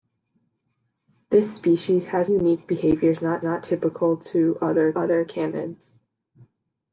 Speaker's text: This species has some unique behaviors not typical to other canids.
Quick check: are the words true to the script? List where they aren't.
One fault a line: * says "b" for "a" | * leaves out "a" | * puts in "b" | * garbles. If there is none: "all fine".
* leaves out "some"
* puts in "not"
* puts in "other"